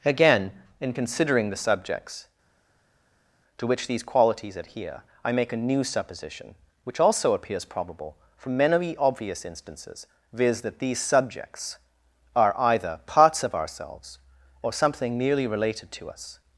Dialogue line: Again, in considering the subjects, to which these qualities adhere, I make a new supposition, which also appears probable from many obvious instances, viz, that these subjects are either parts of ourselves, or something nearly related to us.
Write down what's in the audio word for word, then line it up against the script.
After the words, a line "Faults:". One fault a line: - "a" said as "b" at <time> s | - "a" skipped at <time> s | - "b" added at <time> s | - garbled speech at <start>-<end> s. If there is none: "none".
Again, in considering the subjects, to which these qualities adhere, I make a new supposition, which also appears probable from many obvious instances, viz, that these subjects are either parts of ourselves, or something merely related to us.
Faults:
- "nearly" said as "merely" at 15.2 s